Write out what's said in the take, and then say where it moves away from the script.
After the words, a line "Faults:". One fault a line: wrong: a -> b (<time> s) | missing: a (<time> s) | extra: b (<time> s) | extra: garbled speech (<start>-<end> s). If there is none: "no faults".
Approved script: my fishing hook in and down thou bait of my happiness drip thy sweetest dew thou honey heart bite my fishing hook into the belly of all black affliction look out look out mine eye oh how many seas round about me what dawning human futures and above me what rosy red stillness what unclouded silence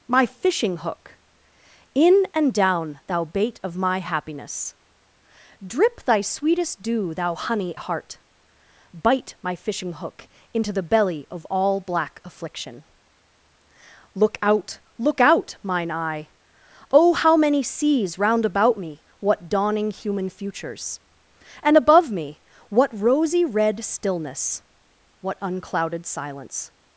my fishing hook in and down thou bait of my happiness drip thy sweetest dew thou honey heart bite my fishing hook into the belly of all black affliction look out look out mine eye oh how many seas round about me what dawning human futures and above me what rosy red stillness what unclouded silence
Faults:
no faults